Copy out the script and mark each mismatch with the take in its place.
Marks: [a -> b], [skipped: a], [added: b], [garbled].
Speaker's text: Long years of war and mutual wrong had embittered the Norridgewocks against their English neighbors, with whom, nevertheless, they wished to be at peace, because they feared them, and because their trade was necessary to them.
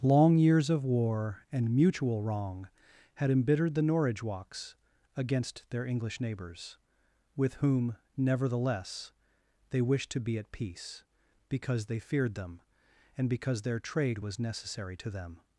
Long years of war and mutual wrong had embittered the Norridgewocks against their English neighbors, with whom, nevertheless, they wished to be at peace, because they feared them, and because their trade was necessary to them.